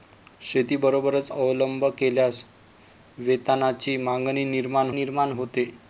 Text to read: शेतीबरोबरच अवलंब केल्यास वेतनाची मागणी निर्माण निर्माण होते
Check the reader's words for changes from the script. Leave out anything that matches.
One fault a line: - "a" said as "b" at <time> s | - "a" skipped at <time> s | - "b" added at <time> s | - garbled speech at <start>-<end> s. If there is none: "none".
none